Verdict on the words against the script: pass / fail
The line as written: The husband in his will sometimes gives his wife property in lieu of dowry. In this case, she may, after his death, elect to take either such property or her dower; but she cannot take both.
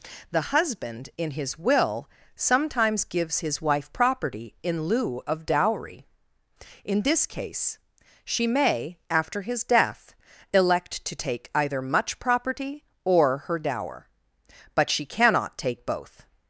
fail